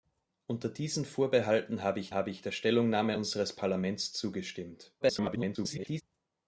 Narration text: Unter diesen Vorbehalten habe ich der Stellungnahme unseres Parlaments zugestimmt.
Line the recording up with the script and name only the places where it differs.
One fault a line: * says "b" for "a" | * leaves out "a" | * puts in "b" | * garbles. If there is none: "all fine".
* puts in "habe ich"
* garbles